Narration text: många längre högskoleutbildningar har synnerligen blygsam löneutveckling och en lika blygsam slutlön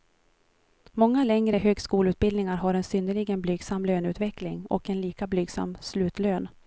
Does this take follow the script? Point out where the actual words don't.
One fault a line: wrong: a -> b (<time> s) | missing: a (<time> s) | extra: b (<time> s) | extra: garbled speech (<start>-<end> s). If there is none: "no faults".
extra: en (2.7 s)